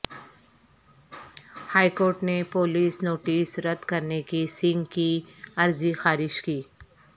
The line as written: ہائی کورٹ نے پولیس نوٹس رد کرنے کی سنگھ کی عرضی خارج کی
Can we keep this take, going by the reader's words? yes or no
yes